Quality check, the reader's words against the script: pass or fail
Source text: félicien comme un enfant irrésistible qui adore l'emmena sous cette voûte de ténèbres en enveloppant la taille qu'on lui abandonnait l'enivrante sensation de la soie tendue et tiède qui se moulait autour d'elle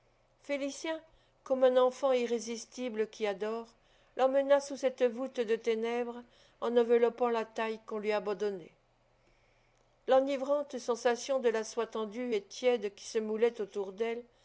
pass